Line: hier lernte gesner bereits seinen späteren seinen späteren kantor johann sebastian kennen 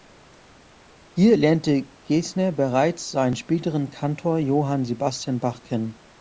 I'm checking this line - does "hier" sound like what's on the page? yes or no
yes